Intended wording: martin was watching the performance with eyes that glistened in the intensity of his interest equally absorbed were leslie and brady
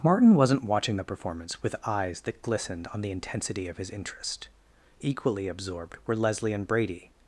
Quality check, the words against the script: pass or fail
fail